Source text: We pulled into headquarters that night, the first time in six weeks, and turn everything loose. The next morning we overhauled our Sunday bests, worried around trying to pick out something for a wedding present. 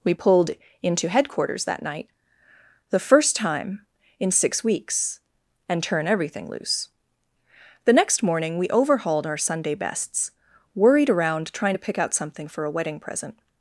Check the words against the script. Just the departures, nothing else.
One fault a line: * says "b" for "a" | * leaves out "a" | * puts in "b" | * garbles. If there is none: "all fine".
all fine